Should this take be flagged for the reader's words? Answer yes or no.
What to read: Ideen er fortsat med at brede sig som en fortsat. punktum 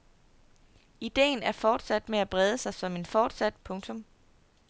no